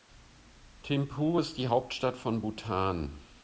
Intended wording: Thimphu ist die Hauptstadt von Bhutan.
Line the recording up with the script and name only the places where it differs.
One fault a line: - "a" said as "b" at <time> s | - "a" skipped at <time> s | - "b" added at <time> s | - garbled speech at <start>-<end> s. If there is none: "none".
none